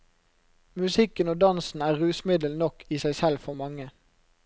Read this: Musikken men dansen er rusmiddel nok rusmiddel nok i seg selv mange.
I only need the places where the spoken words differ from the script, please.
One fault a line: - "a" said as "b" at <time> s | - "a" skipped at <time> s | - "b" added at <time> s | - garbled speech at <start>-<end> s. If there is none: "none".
- "men" said as "og" at 1.3 s
- "rusmiddel nok" skipped at 2.8 s
- "for" added at 3.4 s